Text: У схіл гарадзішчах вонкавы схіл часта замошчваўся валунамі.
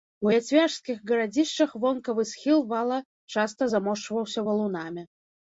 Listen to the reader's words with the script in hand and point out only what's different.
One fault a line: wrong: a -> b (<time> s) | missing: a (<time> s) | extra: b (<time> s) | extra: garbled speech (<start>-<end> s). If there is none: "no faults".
wrong: схіл -> яцвяжскіх (0.3 s)
extra: вала (2.7 s)